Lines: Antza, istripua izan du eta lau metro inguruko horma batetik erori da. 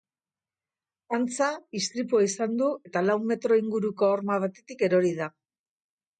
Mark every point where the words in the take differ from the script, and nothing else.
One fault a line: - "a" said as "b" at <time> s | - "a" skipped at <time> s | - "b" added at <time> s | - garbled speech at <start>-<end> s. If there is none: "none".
none